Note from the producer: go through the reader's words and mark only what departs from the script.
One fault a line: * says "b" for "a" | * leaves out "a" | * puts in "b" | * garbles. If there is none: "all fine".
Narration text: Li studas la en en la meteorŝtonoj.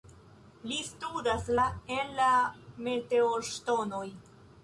* leaves out "en"